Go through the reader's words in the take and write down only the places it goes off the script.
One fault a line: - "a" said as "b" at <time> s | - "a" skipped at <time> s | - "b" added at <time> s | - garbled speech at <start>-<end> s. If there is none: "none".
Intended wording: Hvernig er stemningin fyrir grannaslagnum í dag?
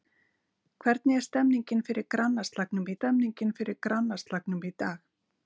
- "stemningin fyrir grannaslagnum" added at 2.9 s